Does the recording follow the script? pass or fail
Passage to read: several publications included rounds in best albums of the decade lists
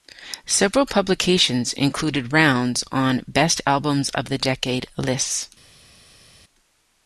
fail